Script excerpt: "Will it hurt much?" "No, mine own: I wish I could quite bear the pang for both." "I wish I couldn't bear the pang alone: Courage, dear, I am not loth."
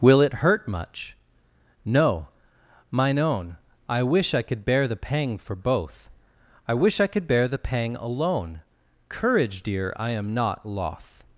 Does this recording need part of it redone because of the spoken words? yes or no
yes